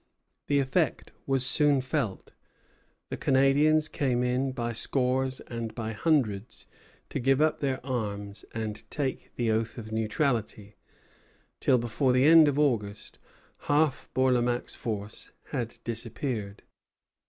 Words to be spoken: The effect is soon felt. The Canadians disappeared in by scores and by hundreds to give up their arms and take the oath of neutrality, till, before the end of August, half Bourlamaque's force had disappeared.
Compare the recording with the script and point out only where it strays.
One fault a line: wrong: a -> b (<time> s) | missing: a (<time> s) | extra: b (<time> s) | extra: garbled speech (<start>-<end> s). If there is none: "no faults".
wrong: is -> was (1.3 s)
wrong: disappeared -> came (3.9 s)